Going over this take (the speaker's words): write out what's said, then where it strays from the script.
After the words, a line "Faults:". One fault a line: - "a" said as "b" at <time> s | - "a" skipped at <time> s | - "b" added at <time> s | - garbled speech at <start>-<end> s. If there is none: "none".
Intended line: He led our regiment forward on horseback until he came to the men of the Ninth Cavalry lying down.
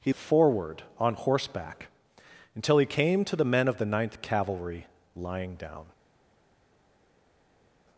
He forward on horseback until he came to the men of the Ninth Cavalry lying down.
Faults:
- "led our regiment" skipped at 0.1 s